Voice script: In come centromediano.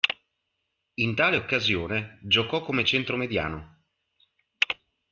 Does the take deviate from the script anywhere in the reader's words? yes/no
yes